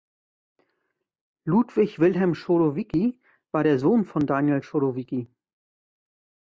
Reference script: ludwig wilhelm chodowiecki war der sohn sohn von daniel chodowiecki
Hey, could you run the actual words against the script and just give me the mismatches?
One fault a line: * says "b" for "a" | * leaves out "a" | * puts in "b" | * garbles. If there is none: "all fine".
* leaves out "sohn"